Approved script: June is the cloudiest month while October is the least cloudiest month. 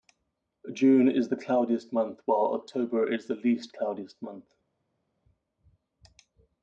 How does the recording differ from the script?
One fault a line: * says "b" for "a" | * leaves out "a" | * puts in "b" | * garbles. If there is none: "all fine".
all fine